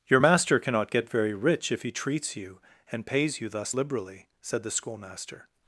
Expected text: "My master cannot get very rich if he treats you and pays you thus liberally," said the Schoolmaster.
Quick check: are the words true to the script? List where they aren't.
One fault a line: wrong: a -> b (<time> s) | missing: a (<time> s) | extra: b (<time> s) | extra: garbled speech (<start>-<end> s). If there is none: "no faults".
wrong: My -> Your (0.1 s)